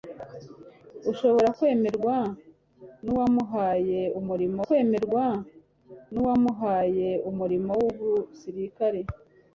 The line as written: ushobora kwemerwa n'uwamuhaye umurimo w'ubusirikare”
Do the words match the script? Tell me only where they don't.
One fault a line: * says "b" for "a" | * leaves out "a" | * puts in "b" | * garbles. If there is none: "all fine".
* puts in "kwemerwa n'uwamuhaye umurimo"